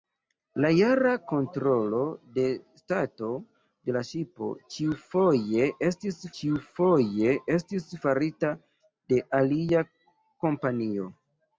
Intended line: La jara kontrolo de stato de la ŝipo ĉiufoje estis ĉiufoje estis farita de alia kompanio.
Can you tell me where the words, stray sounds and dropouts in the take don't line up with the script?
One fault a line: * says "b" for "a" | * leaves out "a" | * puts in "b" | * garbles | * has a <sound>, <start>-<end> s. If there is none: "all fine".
all fine